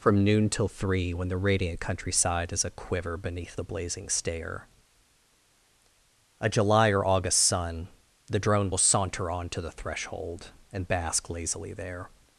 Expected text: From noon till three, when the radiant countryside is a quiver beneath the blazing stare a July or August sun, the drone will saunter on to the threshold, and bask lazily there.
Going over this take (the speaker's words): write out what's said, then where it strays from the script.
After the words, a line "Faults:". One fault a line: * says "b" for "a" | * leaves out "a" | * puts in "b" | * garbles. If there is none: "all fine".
From noon till three, when the radiant countryside is a quiver beneath the blazing stare a July or August sun, the drone will saunter on to the threshold, and bask lazily there.
Faults:
all fine